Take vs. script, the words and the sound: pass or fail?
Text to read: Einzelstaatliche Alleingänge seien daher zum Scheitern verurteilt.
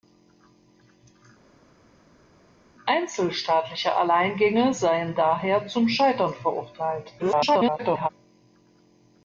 fail